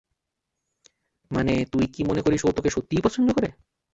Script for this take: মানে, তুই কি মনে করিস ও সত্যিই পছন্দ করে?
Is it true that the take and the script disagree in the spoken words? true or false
true